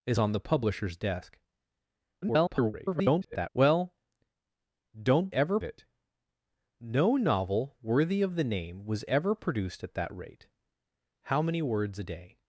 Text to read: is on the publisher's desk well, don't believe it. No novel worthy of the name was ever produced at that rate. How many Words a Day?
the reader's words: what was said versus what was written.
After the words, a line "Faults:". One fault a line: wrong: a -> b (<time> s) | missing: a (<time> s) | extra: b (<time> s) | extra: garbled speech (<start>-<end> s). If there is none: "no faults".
is on the publisher's desk [garbled] well, don't ever it. No novel worthy of the name was ever produced at that rate. How many Words a Day?
Faults:
extra: garbled speech (2.2-3.5 s)
wrong: believe -> ever (5.3 s)